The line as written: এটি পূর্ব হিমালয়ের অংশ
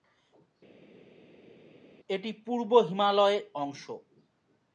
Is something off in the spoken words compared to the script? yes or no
no